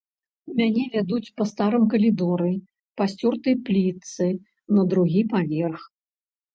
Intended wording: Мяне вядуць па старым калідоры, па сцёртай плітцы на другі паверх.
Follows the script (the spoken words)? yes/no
yes